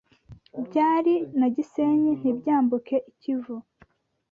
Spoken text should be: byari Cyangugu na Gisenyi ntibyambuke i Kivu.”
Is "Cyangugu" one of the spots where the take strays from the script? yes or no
yes